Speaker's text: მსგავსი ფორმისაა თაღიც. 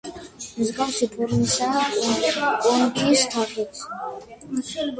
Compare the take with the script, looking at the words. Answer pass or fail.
fail